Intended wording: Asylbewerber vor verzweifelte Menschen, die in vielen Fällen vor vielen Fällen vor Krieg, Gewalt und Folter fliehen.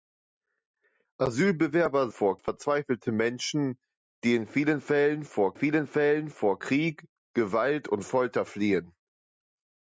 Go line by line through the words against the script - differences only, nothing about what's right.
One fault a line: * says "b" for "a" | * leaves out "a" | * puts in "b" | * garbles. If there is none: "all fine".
all fine